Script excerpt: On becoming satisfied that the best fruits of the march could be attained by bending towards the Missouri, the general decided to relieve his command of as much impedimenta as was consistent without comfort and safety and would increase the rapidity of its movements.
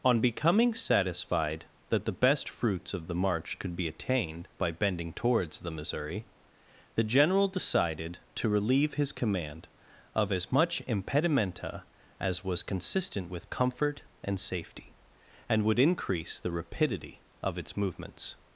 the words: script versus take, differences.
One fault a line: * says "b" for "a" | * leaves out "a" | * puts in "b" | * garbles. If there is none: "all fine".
* says "with" for "without"